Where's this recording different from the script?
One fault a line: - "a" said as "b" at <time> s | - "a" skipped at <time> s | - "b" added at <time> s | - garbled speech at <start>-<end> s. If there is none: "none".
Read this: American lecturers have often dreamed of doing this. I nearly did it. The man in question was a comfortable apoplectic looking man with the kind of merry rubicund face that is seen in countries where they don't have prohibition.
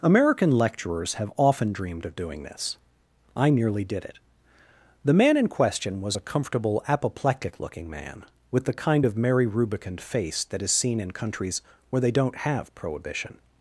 none